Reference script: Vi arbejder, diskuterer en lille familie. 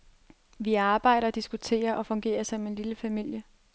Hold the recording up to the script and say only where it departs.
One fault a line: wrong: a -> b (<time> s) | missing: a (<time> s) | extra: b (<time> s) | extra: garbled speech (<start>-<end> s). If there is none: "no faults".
extra: og fungerer som (1.9 s)